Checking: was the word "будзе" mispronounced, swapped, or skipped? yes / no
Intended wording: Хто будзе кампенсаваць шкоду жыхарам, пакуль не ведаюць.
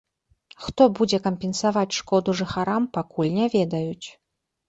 no